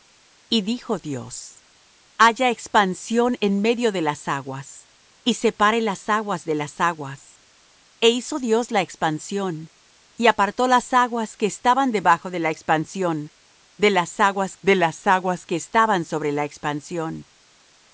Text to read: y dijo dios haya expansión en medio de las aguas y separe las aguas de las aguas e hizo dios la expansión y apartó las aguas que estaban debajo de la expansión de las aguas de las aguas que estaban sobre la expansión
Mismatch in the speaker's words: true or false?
false